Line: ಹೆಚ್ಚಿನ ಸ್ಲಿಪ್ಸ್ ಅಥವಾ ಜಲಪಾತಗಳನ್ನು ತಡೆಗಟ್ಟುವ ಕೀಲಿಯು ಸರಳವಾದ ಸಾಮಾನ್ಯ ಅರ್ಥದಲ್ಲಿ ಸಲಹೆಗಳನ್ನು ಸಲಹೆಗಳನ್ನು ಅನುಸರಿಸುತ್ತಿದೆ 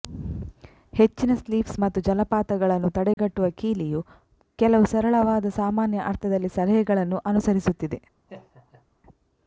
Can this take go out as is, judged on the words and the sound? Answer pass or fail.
fail